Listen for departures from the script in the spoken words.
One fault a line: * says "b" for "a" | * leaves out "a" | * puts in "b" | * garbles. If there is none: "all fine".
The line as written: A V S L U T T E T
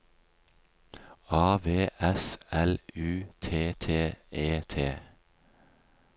all fine